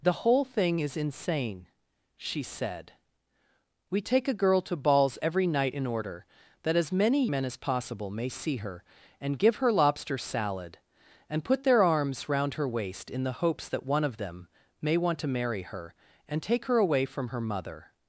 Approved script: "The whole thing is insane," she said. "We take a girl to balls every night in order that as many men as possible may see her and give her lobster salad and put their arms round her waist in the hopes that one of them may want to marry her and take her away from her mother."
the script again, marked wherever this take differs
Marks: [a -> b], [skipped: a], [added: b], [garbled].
"The whole thing is insane," she said. "We take a girl to balls every night in order that as many men as possible may see her and give her lobster salad and put their arms round her waist in the hopes that one of them may want to marry her and take her away from her mother."